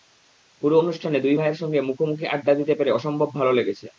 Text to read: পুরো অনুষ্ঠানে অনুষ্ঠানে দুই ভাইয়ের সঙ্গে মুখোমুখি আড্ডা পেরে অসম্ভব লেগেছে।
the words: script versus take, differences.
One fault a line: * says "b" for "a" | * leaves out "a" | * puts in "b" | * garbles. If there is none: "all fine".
* leaves out "অনুষ্ঠানে"
* puts in "দিতে"
* puts in "ভালো"